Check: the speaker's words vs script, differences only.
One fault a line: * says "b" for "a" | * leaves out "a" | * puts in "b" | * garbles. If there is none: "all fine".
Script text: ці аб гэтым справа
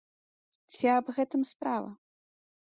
all fine